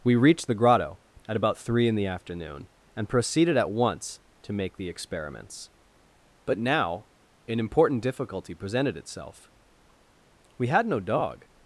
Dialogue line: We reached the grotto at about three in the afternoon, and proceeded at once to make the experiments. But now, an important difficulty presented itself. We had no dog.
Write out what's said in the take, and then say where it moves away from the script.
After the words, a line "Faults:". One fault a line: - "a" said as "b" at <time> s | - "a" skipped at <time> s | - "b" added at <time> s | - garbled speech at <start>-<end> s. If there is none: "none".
We reached the grotto at about three in the afternoon, and proceeded at once to make the experiments. But now, an important difficulty presented itself. We had no dog.
Faults:
none